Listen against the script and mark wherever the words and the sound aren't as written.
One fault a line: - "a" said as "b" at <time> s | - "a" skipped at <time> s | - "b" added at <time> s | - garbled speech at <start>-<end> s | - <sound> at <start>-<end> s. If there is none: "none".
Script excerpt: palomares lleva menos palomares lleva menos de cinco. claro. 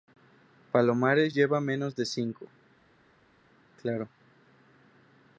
- "palomares lleva menos" skipped at 1.9 s